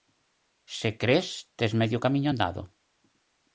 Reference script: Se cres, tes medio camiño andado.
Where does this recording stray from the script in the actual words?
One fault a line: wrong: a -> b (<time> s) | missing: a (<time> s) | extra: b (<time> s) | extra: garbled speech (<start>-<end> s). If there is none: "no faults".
no faults